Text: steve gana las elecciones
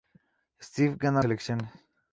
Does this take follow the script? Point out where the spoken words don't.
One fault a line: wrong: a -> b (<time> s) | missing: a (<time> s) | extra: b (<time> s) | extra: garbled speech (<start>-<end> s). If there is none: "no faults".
missing: las (1.2 s)